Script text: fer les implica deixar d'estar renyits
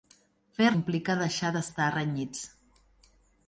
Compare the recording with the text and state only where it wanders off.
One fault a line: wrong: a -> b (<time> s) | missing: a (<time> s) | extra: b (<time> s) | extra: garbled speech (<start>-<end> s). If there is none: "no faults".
missing: les (0.7 s)